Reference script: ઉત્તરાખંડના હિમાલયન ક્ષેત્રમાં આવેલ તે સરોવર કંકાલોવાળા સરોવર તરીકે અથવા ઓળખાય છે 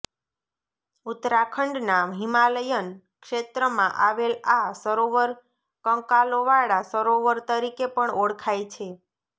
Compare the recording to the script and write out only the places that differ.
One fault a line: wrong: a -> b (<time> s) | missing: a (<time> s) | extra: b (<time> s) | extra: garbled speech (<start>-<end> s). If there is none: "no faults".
wrong: તે -> આ (4.5 s)
wrong: અથવા -> પણ (7.9 s)